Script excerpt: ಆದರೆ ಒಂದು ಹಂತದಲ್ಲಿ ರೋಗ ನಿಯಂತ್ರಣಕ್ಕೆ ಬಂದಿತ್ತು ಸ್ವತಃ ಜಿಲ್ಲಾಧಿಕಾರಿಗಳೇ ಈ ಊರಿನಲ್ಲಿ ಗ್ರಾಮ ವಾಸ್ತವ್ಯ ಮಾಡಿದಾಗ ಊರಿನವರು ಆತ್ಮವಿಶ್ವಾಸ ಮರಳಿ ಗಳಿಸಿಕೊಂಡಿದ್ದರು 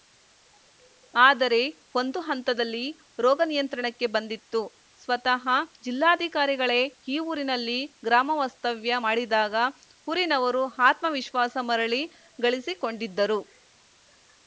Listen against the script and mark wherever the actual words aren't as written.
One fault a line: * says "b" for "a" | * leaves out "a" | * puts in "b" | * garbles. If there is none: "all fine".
all fine